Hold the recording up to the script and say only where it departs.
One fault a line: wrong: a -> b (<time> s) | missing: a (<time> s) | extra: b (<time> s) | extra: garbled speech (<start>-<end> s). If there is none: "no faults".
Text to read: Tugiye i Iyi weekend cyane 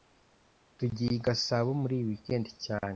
extra: Gasabo muri (1.3 s)